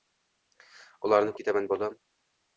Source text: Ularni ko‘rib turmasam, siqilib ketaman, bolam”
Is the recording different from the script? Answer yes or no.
yes